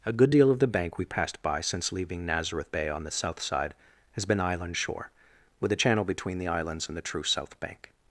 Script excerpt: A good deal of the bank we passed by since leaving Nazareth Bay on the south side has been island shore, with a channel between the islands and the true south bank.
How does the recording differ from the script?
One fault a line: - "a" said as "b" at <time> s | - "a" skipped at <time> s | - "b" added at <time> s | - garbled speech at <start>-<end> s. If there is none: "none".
none